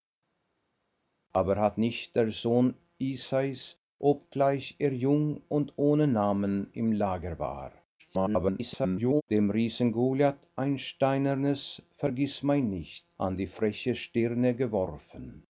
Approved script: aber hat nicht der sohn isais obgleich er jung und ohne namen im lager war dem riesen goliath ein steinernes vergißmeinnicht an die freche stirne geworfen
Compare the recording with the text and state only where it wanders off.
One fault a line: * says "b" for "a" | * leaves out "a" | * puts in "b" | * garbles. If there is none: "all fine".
* garbles